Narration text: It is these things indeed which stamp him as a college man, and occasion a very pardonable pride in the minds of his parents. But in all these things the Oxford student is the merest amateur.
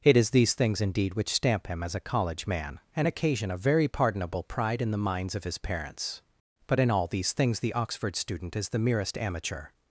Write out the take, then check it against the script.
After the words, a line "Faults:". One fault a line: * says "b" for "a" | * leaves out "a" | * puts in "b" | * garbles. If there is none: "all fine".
It is these things indeed which stamp him as a college man, and occasion a very pardonable pride in the minds of his parents. But in all these things the Oxford student is the merest amateur.
Faults:
all fine